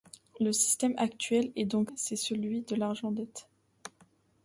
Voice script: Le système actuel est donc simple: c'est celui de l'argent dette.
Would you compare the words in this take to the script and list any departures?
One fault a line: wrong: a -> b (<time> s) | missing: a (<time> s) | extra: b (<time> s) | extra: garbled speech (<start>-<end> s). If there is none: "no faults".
missing: simple (1.9 s)